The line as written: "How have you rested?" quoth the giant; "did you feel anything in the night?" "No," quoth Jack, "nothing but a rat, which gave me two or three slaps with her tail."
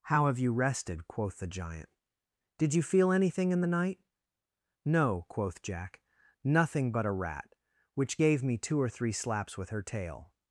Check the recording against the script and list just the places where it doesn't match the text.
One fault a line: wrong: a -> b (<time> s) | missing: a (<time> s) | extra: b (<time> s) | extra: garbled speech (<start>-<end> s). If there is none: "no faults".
no faults